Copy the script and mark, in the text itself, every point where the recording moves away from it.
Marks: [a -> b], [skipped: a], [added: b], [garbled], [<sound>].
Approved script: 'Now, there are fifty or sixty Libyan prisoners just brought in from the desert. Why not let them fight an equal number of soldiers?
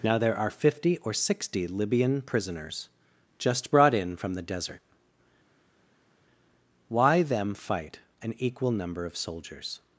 'Now, there are fifty or sixty Libyan prisoners just brought in from the desert. Why [skipped: not let] them fight an equal number of soldiers?